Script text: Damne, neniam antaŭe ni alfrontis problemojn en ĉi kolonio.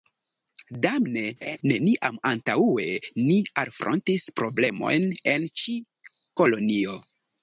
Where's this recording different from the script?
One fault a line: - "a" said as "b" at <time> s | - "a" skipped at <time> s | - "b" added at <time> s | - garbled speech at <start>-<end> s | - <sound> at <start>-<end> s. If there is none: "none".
- laugh at 1.4-1.6 s